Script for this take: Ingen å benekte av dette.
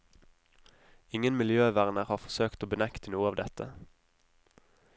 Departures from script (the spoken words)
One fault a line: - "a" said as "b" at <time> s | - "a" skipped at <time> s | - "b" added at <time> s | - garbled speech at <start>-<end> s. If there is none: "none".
- "miljøverner har forsøkt" added at 1.4 s
- "noe" added at 3.1 s